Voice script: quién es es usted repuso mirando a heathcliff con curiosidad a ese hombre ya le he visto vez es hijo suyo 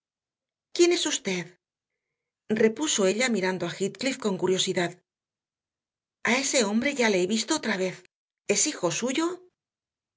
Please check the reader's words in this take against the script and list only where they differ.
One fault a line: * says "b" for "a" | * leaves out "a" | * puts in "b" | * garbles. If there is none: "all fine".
* leaves out "es"
* puts in "ella"
* puts in "otra"